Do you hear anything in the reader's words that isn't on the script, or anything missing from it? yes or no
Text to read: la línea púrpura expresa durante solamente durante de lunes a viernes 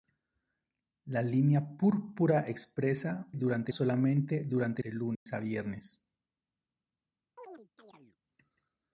no